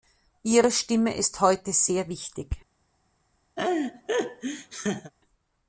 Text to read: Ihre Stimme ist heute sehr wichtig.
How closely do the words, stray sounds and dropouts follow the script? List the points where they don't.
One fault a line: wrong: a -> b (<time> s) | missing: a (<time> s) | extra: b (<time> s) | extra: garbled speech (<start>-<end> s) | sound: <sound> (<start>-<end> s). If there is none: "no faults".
sound: laugh (3.6-5.1 s)